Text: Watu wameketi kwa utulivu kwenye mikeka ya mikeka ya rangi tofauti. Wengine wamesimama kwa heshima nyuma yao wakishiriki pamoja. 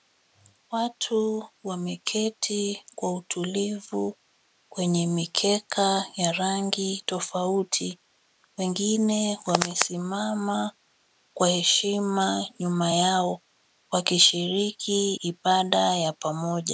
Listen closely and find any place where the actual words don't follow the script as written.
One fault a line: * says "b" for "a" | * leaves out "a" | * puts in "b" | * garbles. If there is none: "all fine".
* leaves out "mikeka ya"
* puts in "ibada ya"